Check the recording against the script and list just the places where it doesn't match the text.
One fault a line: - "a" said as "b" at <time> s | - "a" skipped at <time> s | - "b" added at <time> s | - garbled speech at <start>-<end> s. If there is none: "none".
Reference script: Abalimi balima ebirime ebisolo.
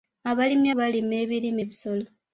none